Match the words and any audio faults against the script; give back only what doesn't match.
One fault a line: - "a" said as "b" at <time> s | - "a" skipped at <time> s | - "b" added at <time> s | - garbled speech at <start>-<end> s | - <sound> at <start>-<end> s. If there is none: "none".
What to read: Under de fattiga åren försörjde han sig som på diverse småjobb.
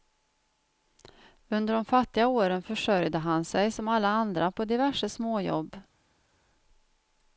- "alla andra" added at 3.9 s